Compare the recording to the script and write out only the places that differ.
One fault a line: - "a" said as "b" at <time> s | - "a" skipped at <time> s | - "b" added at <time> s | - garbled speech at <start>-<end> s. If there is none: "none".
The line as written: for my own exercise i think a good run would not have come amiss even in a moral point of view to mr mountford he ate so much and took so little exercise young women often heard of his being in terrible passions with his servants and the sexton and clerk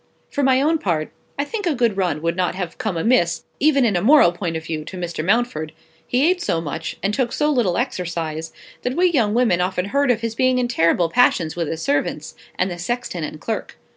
- "exercise" said as "part" at 0.8 s
- "that we" added at 8.8 s